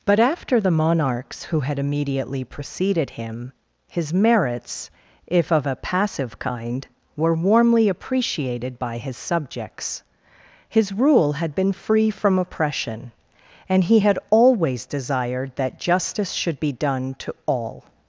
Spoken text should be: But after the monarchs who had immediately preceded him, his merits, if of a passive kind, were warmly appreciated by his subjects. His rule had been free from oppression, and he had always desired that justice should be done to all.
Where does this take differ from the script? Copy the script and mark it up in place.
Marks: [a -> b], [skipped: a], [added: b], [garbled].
But after the monarchs who had immediately preceded him, his merits, if of a passive kind, were warmly appreciated by his subjects. His rule had been free from oppression, and he had always desired that justice should be done to all.